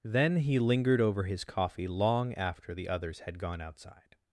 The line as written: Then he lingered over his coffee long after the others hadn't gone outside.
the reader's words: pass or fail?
fail